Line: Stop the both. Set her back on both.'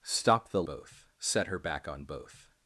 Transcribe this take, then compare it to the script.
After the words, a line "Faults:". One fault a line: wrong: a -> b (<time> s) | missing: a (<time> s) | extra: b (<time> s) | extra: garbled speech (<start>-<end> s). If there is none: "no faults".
Stop the both. Set her back on both.'
Faults:
no faults